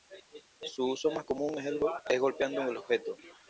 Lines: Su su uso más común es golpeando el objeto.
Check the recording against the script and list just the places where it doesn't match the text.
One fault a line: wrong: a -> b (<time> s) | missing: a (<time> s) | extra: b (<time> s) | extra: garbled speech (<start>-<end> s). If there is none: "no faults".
missing: su (0.9 s)